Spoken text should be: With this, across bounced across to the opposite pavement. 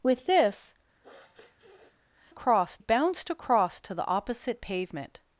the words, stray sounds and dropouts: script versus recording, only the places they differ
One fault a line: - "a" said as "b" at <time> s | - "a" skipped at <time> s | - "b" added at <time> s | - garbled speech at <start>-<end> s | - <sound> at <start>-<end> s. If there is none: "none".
- sniff at 1.0-2.0 s